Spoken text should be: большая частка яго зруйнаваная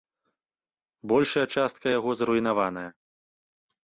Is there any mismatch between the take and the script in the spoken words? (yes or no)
no